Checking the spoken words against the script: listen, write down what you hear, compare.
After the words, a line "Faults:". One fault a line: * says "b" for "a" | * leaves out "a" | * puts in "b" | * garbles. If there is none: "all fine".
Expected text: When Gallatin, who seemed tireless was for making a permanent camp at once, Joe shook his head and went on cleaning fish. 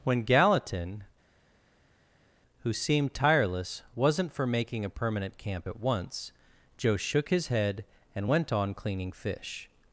When Gallatin, who seemed tireless wasn't for making a permanent camp at once, Joe shook his head and went on cleaning fish.
Faults:
* says "wasn't" for "was"